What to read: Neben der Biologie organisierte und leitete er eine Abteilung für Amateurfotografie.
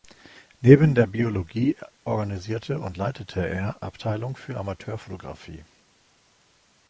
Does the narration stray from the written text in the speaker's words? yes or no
yes